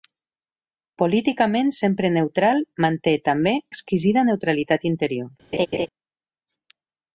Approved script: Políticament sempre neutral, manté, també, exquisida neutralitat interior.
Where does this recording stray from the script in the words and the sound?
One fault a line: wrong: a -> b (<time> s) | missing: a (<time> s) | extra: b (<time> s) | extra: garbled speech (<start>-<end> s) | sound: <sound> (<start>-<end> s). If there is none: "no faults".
sound: laugh (5.5-5.9 s)